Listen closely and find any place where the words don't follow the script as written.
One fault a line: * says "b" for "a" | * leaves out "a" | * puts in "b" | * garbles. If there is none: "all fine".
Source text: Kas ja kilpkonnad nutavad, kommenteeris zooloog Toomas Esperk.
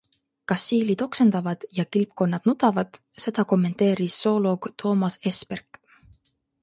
* puts in "siilid oksendavad"
* puts in "seda"